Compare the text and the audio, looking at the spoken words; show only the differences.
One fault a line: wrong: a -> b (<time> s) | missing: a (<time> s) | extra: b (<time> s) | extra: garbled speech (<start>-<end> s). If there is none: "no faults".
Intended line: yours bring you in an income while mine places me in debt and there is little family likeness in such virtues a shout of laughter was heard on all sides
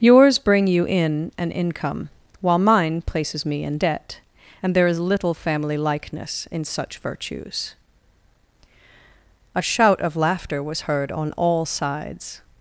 no faults